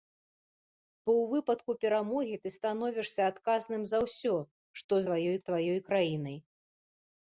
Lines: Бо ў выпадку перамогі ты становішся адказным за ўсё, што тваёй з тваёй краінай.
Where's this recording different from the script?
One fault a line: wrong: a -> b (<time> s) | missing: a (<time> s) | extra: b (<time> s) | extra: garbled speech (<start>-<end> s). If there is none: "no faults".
no faults